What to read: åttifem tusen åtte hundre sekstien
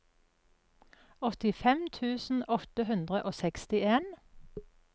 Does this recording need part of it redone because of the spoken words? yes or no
yes